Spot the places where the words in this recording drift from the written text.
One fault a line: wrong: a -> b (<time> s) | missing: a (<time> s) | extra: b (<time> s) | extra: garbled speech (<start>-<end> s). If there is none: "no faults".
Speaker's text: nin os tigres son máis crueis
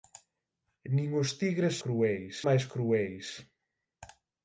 wrong: son -> crueis (1.8 s)